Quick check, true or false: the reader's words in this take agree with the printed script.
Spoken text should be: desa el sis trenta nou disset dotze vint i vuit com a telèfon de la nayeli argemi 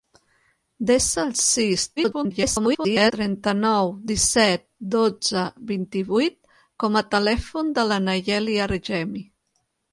false